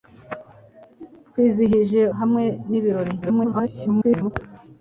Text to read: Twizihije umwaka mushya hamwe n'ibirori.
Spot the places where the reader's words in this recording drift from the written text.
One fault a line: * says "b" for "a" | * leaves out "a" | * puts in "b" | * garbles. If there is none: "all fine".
* leaves out "umwaka mushya"
* garbles